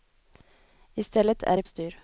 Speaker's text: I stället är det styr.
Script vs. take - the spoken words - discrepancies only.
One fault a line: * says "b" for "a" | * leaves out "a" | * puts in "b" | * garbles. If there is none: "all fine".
all fine